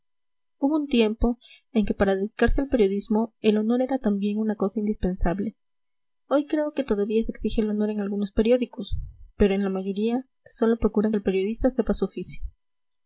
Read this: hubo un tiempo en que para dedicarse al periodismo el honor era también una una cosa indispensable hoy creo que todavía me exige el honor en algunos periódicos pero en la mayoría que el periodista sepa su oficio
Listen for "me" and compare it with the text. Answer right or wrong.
wrong